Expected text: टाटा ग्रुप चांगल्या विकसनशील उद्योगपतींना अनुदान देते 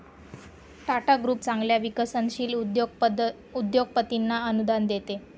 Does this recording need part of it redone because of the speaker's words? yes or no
no